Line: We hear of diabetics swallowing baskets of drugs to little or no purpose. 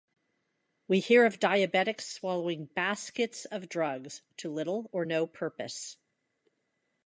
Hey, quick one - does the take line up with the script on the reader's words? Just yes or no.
yes